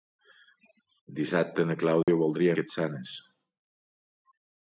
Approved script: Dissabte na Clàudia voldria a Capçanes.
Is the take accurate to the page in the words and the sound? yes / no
no